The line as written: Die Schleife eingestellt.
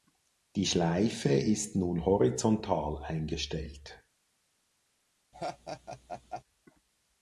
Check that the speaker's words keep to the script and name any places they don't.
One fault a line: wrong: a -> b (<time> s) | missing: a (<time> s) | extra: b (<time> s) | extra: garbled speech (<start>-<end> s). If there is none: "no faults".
extra: ist nun horizontal (1.3 s)